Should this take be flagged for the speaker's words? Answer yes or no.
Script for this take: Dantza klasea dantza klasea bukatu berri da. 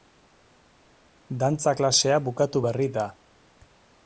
yes